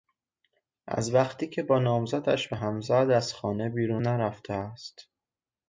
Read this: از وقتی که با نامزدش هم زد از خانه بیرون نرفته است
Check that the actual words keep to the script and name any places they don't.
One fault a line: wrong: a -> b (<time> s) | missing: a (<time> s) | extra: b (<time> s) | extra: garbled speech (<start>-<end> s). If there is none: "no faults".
extra: به (2.4 s)